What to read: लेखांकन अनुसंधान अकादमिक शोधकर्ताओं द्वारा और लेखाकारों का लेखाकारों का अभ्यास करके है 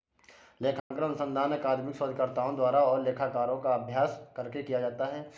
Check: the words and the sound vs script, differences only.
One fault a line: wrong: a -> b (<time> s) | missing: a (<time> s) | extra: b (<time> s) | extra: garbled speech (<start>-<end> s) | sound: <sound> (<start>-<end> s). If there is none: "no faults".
sound: dropout (0.8-0.9 s)
wrong: लेखाकारों का अभ्यास करके -> अभ्यास करके किया जाता (3.7 s)